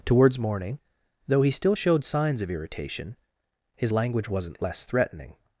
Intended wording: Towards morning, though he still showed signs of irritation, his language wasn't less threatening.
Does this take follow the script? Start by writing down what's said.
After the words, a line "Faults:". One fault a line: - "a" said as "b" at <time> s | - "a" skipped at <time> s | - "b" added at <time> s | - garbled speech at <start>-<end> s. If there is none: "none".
Towards morning, though he still showed signs of irritation, his language wasn't less threatening.
Faults:
none